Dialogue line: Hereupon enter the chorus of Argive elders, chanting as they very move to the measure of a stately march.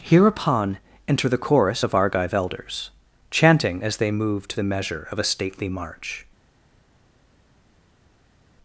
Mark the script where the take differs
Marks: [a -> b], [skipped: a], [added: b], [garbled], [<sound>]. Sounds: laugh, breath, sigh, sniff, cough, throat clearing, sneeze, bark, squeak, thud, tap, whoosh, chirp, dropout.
Hereupon enter the chorus of Argive elders, chanting as they [skipped: very] move to the measure of a stately march.